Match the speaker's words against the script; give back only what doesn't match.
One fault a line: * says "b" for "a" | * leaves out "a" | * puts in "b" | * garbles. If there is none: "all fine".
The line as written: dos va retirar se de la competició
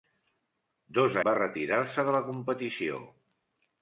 all fine